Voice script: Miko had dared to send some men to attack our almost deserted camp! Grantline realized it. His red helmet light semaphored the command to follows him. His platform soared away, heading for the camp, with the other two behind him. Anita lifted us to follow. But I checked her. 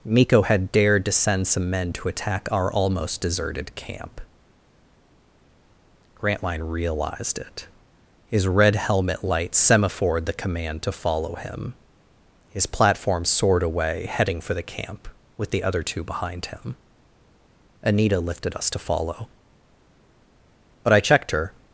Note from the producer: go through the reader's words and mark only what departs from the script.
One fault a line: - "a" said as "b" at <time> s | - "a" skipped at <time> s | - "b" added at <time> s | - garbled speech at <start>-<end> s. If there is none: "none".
- "follows" said as "follow" at 10.9 s